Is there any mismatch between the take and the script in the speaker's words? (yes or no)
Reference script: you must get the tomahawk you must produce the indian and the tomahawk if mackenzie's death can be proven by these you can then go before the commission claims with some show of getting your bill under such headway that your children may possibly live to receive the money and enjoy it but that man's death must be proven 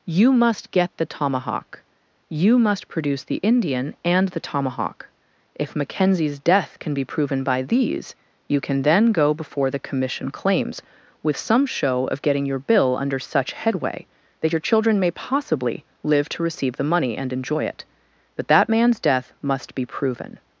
no